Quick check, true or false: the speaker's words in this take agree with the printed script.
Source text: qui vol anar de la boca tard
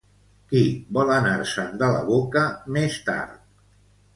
false